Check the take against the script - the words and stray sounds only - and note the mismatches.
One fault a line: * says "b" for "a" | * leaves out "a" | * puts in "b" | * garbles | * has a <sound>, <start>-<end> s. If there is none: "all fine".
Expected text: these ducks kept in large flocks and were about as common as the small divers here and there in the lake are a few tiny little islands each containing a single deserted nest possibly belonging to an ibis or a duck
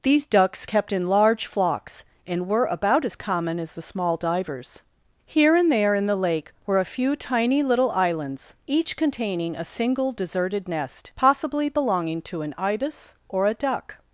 * says "were" for "are"